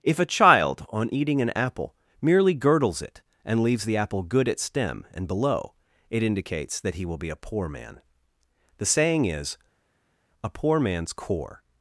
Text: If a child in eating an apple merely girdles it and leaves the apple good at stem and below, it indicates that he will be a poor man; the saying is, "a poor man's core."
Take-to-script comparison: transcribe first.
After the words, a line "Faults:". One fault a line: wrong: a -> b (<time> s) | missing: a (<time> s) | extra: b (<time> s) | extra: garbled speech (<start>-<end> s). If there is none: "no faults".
If a child on eating an apple merely girdles it and leaves the apple good at stem and below, it indicates that he will be a poor man; the saying is, "a poor man's core."
Faults:
wrong: in -> on (0.9 s)